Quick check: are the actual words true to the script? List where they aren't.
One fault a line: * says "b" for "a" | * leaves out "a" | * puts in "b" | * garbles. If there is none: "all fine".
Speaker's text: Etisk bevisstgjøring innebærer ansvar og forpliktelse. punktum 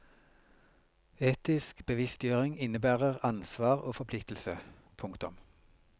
all fine